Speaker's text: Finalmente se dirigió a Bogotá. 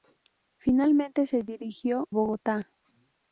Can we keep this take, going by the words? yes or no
no